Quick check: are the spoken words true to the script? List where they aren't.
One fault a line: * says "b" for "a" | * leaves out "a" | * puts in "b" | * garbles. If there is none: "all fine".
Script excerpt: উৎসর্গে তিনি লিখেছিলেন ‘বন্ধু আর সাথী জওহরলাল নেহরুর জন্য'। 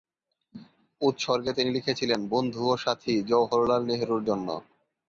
* says "ও" for "আর"